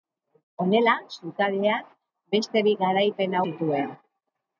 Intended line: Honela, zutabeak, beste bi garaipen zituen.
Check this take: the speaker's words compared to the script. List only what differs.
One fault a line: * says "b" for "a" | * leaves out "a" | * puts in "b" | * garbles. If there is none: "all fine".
all fine